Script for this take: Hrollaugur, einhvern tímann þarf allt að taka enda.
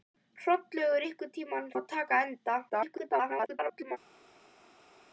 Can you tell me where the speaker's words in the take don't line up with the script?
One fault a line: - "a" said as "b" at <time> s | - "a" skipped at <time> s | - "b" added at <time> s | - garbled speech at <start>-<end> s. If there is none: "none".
- "þarf allt" skipped at 1.7 s
- garbled speech at 2.7-4.0 s